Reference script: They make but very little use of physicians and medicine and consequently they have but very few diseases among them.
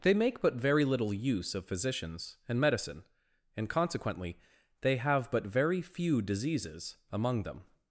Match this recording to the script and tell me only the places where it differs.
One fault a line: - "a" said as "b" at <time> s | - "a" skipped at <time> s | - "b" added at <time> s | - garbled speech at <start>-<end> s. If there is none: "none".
none